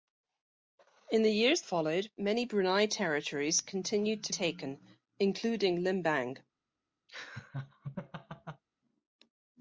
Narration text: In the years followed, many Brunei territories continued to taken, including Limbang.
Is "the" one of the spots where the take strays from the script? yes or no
no